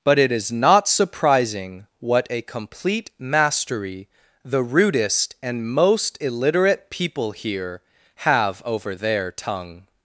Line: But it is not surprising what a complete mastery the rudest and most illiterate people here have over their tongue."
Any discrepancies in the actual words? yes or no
no